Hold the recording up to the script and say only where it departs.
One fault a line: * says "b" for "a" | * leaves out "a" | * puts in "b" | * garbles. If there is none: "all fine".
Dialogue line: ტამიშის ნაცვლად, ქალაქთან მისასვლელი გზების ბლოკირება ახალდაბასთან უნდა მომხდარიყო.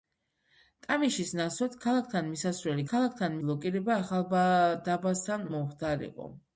* says "ქალაქთან" for "გზების"
* leaves out "უნდა"